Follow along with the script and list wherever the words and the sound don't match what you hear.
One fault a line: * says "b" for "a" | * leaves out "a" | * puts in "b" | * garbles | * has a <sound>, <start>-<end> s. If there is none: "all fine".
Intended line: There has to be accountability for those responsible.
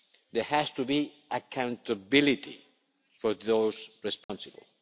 * has a dropout, 4.2-4.3 s